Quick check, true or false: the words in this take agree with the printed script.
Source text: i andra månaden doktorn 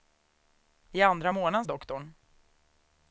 true